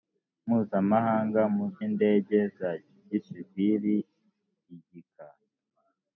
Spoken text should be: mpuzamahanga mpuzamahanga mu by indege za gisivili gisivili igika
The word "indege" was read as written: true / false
true